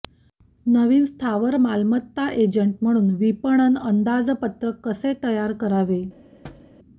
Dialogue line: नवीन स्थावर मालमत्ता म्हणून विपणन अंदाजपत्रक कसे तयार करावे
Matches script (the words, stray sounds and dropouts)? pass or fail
fail